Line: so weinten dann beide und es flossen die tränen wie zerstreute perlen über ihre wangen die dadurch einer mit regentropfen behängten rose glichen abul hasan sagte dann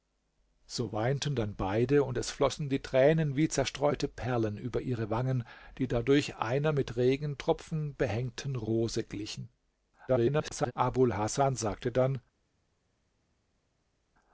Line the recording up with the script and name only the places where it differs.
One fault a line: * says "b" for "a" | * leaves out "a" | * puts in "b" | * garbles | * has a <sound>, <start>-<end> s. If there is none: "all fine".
* garbles